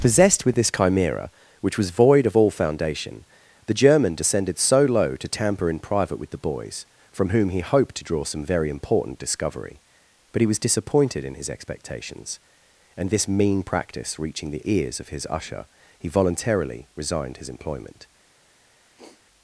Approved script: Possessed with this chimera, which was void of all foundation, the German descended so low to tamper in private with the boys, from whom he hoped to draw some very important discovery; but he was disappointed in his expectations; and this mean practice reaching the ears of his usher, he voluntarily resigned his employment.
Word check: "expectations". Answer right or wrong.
right